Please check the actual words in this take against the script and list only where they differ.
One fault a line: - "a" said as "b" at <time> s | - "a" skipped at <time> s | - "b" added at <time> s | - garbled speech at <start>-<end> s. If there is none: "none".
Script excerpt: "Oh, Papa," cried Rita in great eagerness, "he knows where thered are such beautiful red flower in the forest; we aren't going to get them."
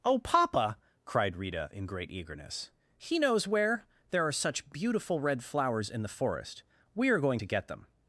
- "thered" said as "there" at 4.1 s
- "flower" said as "flowers" at 5.4 s
- "aren't" said as "are" at 7.1 s